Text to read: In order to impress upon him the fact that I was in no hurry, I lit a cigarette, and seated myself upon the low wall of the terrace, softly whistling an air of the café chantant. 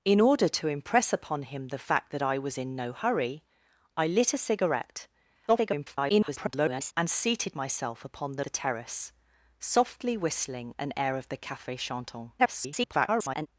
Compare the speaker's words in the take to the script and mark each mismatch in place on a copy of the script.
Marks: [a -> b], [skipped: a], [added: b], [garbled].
In order to impress upon him the fact that I was in no hurry, I lit a cigarette, [garbled] and seated myself upon the [skipped: low wall of] the terrace, softly whistling an air of the café chantant. [garbled]